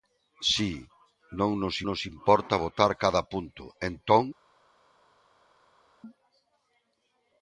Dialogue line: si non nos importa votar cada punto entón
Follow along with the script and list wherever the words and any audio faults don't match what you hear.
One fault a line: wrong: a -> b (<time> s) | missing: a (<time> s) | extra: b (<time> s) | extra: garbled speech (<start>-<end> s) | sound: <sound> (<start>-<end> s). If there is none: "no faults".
extra: nos (1.9 s)